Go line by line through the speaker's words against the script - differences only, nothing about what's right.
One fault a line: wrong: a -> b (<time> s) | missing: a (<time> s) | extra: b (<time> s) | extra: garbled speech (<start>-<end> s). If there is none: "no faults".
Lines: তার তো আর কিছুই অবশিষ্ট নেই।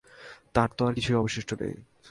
no faults